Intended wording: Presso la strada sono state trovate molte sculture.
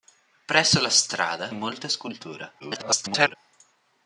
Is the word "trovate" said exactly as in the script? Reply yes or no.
no